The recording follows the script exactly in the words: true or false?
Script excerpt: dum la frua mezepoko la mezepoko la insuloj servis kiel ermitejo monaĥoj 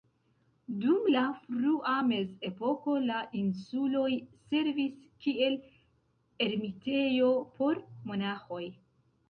false